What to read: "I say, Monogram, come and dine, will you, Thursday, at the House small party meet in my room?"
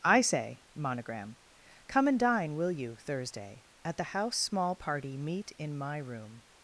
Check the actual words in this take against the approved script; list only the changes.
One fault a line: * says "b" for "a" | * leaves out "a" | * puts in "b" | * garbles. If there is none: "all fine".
all fine